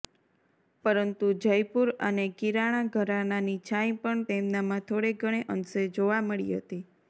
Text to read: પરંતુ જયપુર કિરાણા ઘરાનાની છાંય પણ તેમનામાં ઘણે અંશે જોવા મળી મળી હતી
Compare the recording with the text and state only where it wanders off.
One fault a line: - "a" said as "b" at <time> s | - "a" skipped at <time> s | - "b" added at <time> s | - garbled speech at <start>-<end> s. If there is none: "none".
- "અને" added at 2.1 s
- "થોડે" added at 4.9 s
- "મળી" skipped at 6.6 s